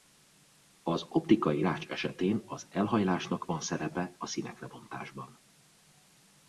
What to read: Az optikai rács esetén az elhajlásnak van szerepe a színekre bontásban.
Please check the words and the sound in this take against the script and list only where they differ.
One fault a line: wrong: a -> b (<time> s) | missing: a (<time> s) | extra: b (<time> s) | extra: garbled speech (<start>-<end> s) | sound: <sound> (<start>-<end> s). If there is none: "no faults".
no faults